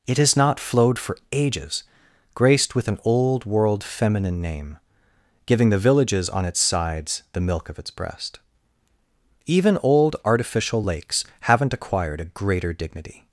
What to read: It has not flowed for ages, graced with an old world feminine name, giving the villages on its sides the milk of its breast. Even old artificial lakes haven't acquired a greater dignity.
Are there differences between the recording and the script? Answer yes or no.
no